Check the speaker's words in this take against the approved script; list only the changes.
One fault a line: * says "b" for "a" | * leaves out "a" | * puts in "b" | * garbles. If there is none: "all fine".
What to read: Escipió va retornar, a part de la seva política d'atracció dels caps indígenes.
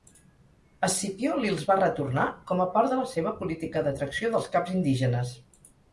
* puts in "li'ls"
* puts in "com"